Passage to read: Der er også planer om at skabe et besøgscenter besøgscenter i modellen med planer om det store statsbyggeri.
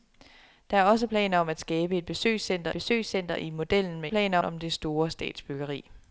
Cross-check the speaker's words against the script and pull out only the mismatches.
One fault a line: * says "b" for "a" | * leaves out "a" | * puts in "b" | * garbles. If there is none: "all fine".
all fine